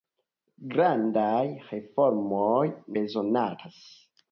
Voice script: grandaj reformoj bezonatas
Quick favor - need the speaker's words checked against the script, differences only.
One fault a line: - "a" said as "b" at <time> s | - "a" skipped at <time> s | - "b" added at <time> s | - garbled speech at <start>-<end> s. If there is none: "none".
none